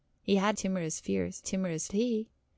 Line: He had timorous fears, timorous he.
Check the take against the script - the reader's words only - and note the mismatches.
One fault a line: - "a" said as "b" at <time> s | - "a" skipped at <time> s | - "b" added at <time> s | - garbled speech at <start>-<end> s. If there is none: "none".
none